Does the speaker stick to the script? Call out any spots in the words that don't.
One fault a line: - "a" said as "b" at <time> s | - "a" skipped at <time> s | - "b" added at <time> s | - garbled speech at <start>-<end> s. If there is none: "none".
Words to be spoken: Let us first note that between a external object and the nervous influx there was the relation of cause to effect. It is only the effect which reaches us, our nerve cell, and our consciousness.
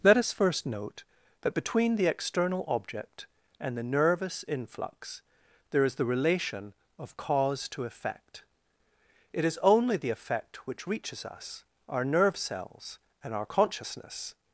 - "a" said as "the" at 1.9 s
- "was" said as "is" at 5.8 s
- "cell" said as "cells" at 12.3 s